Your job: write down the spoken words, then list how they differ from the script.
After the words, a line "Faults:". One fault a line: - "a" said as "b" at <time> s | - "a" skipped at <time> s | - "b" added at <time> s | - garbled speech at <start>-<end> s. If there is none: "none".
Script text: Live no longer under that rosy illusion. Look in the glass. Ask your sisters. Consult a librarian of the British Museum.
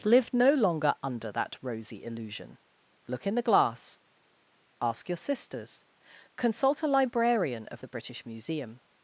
Live no longer under that rosy illusion. Look in the glass. Ask your sisters. Consult a librarian of the British Museum.
Faults:
none